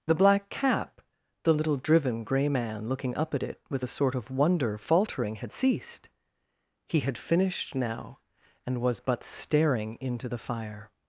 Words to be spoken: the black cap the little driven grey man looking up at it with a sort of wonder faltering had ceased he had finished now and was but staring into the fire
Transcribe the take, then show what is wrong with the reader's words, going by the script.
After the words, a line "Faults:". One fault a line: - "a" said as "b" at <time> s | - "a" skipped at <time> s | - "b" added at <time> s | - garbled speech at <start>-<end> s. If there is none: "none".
the black cap the little driven grey man looking up at it with a sort of wonder faltering had ceased he had finished now and was but staring into the fire
Faults:
none